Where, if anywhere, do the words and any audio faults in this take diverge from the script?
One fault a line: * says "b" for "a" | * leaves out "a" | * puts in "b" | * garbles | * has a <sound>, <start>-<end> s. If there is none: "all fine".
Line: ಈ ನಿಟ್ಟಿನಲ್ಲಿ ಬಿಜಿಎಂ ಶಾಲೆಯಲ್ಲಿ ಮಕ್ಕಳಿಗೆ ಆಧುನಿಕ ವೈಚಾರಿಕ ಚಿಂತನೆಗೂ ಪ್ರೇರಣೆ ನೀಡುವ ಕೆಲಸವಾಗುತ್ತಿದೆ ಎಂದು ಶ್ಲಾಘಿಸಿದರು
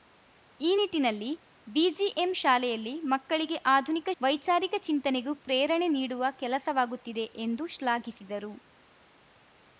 all fine